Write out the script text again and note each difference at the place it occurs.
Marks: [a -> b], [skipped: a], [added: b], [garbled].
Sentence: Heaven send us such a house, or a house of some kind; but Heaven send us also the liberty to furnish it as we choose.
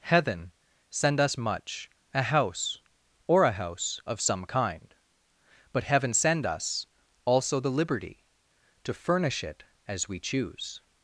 Heaven send us [such -> much] a house, or a house of some kind; but Heaven send us also the liberty to furnish it as we choose.